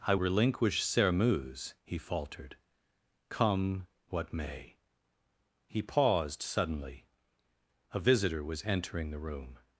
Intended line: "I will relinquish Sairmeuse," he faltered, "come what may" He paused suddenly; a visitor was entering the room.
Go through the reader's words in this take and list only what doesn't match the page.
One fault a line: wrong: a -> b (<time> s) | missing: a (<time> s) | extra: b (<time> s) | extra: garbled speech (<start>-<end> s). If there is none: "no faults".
missing: will (0.1 s)